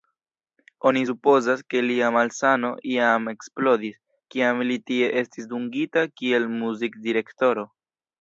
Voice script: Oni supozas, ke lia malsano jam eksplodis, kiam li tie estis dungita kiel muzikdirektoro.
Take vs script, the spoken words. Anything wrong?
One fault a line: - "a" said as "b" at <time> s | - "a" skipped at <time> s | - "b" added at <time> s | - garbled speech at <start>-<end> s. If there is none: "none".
none